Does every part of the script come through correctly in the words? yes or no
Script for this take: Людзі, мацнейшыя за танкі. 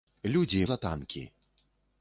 no